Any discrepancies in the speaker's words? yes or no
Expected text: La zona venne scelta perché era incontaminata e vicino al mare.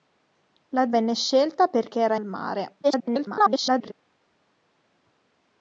yes